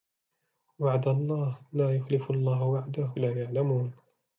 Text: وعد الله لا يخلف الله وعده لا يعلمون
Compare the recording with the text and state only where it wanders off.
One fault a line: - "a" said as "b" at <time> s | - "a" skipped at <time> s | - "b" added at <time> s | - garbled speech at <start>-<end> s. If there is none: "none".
none